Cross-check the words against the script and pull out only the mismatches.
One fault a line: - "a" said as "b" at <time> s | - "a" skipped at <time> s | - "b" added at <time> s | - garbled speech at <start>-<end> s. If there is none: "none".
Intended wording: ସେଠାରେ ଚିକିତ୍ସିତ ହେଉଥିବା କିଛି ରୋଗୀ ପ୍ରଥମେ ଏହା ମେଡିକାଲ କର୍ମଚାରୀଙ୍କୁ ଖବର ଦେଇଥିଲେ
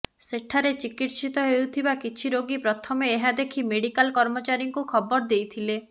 - "ଦେଖି" added at 3.4 s